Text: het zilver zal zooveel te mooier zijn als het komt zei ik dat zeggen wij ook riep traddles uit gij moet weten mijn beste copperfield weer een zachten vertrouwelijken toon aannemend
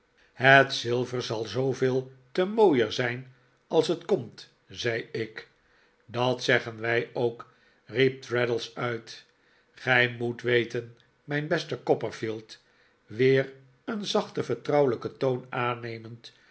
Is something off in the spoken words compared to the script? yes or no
no